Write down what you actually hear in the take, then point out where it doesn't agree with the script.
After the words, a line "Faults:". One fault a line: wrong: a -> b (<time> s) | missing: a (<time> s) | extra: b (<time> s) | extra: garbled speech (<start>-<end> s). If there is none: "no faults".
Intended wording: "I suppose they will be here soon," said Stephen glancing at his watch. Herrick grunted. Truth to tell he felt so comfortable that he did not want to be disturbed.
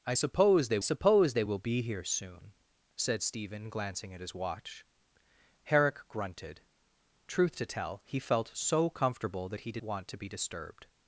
"I suppose they suppose they will be here soon," said Stephen glancing at his watch. Herrick grunted. Truth to tell he felt so comfortable that he did want to be disturbed.
Faults:
extra: suppose they (0.8 s)
missing: not (9.8 s)